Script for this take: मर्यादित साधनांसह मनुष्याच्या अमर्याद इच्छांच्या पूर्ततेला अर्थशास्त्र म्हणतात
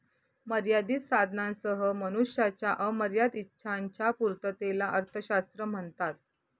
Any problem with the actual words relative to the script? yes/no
no